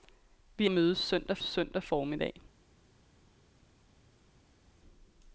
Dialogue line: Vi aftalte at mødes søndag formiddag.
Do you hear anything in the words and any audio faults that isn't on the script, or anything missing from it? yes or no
yes